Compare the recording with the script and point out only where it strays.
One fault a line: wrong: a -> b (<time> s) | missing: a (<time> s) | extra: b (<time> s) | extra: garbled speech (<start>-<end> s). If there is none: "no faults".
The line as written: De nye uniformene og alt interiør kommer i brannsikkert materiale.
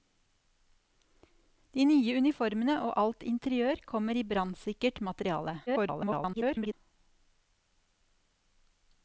extra: garbled speech (5.7-6.7 s)